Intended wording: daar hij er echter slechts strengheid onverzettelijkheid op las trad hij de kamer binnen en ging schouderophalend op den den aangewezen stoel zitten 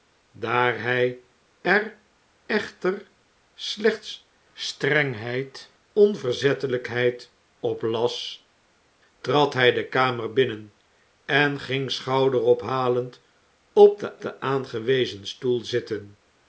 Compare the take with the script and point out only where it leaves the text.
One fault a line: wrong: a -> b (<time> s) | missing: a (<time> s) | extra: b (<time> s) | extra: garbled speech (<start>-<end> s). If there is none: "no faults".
no faults